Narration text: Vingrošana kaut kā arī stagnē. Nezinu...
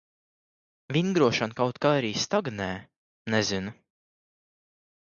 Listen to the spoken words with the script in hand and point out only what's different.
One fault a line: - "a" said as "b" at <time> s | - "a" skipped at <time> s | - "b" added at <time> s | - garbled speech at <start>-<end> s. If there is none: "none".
none